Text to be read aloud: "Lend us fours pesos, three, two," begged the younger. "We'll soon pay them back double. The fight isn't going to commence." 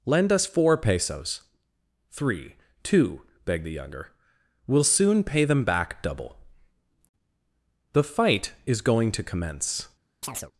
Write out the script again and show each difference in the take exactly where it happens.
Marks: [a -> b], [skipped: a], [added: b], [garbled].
"Lend us [fours -> four] pesos, three, two," begged the younger. "We'll soon pay them back double. The fight [isn't -> is] going to commence."